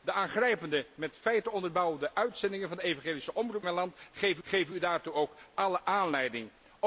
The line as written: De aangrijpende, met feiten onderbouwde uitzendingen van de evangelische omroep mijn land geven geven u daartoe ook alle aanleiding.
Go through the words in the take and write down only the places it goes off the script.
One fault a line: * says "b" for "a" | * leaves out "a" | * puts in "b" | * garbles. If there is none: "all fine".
all fine